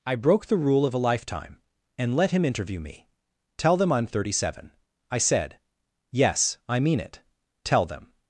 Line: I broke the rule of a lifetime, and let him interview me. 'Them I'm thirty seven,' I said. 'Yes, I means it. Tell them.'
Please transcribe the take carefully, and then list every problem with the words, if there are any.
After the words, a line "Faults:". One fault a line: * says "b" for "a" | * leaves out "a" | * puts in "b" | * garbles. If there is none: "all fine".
I broke the rule of a lifetime, and let him interview me. 'Tell them I'm thirty seven,' I said. 'Yes, I mean it. Tell them.'
Faults:
* puts in "Tell"
* says "mean" for "means"